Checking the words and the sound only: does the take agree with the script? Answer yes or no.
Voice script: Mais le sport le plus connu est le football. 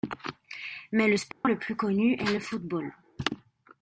no